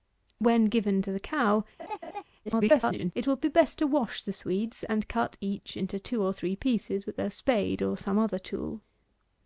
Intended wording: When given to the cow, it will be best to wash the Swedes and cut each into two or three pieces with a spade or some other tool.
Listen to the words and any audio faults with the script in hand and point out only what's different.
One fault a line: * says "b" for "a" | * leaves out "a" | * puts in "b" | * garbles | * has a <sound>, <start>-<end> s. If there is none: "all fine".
* has a laugh, 1.8-2.2 s
* garbles